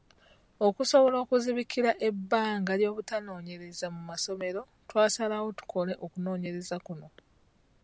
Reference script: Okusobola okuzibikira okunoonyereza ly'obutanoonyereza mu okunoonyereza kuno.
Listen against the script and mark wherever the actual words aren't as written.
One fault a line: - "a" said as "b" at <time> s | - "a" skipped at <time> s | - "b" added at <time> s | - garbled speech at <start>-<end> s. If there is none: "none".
- "okunoonyereza" said as "ebbanga" at 2.1 s
- "masomero twasalawo tukole" added at 4.1 s